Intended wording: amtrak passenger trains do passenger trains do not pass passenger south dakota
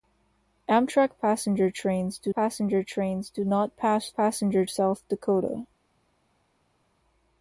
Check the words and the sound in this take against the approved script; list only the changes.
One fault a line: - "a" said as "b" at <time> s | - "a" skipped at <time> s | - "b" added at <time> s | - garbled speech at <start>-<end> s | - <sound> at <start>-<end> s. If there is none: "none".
none